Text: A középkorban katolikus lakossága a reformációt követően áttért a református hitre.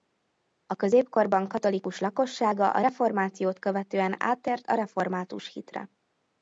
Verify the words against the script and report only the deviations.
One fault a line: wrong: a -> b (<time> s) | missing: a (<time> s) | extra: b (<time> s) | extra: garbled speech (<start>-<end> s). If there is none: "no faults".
no faults